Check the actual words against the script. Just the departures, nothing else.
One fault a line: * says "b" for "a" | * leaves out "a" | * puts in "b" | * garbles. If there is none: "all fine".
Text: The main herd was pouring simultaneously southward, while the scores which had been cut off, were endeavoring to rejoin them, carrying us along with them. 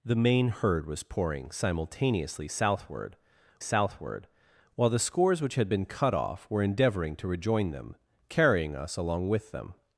* puts in "southward"